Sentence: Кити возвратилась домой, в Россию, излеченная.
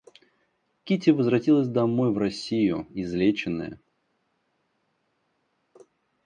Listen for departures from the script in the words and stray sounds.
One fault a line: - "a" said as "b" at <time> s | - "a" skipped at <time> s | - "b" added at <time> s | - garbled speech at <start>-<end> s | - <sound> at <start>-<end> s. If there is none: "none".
none